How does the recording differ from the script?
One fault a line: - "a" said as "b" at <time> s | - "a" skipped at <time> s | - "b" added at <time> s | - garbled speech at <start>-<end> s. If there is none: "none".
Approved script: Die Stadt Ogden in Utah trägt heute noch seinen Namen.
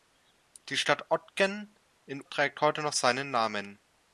- "Utah" skipped at 2.2 s